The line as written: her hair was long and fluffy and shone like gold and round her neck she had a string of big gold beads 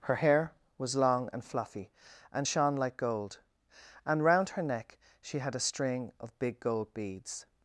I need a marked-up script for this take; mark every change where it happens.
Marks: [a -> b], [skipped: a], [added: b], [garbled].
her hair was long and fluffy and shone like gold and round her neck she had a string of big gold beads